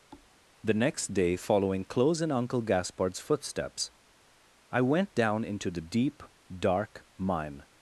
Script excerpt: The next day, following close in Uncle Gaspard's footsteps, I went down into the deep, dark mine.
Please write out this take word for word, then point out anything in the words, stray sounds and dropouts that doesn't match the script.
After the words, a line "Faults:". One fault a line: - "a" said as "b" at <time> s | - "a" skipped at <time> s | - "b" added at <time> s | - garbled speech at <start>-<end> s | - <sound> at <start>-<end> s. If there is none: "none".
The next day, following close in Uncle Gaspard's footsteps, I went down into the deep, dark mine.
Faults:
- thud at 0.1-0.3 s